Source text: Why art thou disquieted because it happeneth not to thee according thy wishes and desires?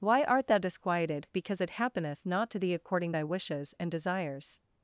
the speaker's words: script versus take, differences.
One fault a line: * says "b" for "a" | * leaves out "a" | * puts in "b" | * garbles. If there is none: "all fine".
all fine